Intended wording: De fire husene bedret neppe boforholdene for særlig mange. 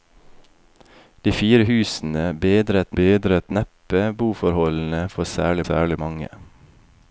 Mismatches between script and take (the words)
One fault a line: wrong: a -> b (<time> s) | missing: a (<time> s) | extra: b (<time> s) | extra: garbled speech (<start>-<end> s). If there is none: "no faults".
extra: bedret (3.0 s)
extra: særlig (5.7 s)